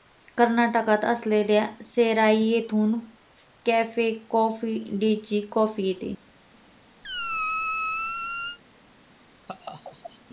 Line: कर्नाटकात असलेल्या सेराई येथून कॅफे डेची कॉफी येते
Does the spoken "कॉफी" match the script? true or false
true